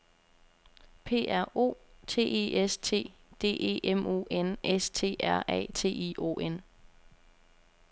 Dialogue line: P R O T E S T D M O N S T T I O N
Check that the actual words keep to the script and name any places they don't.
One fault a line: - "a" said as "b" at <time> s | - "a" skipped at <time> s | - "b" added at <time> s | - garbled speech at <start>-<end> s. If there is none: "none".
- "E" added at 3.6 s
- "R A" added at 5.2 s